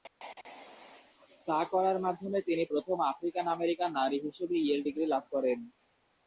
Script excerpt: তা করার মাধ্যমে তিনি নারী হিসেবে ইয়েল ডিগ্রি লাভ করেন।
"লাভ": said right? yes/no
yes